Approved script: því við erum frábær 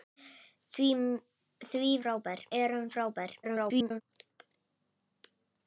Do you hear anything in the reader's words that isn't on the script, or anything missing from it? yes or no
yes